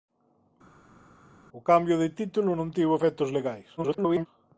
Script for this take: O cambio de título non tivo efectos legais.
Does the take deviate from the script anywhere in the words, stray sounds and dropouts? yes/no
yes